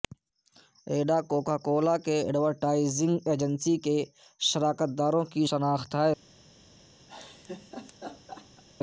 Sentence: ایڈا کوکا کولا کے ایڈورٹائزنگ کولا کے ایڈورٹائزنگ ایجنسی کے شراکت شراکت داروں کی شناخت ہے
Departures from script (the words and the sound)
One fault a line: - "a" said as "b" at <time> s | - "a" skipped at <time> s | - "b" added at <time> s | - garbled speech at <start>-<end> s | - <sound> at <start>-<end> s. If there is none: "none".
- "کولا کے ایڈورٹائزنگ" skipped at 3.1 s
- "شراکت" skipped at 4.9 s
- laugh at 7.1-8.6 s